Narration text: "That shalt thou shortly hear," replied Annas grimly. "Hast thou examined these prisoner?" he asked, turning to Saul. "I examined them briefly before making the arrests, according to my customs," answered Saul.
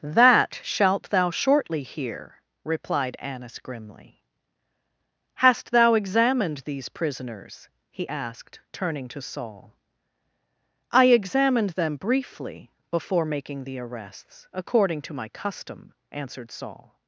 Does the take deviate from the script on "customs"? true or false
true